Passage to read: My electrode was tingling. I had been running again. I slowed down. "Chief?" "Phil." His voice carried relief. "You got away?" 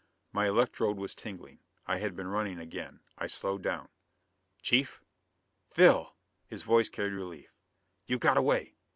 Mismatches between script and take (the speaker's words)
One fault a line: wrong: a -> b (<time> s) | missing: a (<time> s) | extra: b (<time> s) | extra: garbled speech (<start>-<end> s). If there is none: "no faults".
no faults